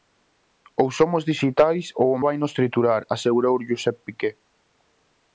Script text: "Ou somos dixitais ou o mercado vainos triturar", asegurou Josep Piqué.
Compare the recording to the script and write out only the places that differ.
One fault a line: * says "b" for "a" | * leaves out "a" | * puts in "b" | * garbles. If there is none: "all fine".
* leaves out "mercado"